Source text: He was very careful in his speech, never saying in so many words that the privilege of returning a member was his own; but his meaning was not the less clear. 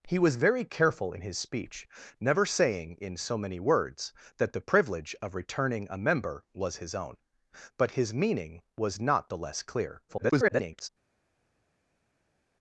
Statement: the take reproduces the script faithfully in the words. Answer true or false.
false